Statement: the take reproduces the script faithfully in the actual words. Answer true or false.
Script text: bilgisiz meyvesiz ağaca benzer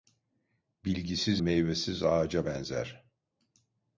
true